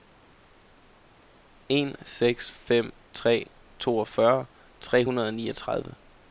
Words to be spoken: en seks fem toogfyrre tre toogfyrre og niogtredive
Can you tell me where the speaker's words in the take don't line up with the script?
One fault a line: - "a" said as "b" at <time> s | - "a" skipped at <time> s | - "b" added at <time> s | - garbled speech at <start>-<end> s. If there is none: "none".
- "tre" added at 3.1 s
- "toogfyrre" said as "hundrede" at 5.0 s